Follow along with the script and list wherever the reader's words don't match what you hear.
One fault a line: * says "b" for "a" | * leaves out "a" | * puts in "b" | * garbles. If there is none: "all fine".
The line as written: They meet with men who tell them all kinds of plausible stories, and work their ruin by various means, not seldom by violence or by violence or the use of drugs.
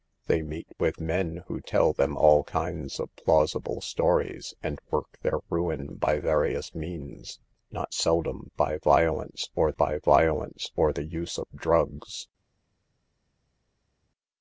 all fine